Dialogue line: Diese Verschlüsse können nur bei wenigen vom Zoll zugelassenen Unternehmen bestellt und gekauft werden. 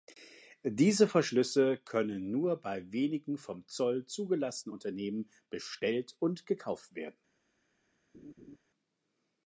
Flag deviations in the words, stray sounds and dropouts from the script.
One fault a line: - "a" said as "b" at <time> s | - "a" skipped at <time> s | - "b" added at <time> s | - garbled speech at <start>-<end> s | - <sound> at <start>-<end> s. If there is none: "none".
- laugh at 8.1-8.6 s